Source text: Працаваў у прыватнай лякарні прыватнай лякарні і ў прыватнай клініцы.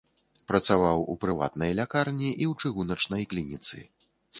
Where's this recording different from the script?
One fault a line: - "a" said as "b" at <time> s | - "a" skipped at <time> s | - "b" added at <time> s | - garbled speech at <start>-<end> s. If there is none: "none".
- "прыватнай лякарні" skipped at 2.3 s
- "прыватнай" said as "чыгуначнай" at 2.7 s